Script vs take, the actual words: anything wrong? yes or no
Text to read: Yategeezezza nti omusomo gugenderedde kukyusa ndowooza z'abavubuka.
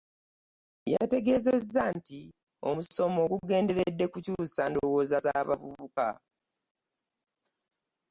no